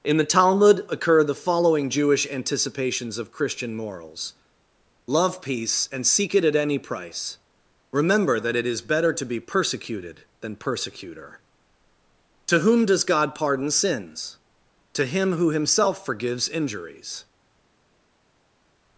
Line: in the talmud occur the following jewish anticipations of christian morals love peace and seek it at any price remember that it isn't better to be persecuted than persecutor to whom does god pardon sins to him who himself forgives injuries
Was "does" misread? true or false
false